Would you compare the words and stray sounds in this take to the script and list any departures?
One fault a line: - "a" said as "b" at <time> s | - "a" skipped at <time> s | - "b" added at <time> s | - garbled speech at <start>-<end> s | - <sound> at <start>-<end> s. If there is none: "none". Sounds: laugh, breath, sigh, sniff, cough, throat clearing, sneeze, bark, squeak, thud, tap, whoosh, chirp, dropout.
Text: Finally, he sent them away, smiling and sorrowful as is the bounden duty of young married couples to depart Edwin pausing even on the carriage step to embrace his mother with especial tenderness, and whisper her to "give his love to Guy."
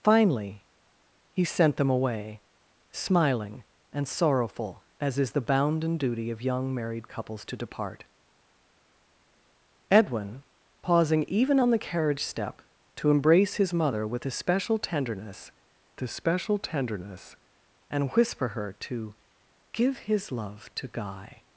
- "especial tenderness" added at 16.0 s